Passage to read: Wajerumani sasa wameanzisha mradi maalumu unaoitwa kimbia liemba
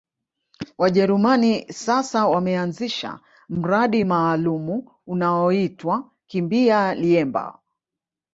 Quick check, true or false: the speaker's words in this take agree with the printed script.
true